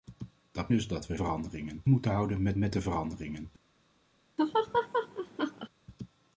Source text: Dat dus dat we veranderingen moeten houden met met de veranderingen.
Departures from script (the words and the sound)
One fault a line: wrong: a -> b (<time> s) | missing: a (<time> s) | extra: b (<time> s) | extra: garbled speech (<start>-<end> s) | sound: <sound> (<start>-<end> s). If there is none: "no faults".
sound: laugh (4.4-5.7 s)